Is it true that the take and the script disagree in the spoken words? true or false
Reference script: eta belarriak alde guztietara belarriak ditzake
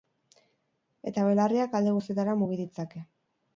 true